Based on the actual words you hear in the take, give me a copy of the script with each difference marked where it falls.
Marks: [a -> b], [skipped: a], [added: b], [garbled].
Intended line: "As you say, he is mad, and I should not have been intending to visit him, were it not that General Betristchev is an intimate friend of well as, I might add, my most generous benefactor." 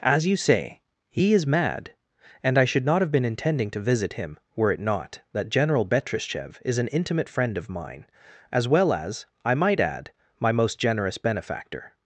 "As you say, he is mad, and I should not have been intending to visit him, were it not that General Betristchev is an intimate friend of [added: mine as] well as, I might add, my most generous benefactor."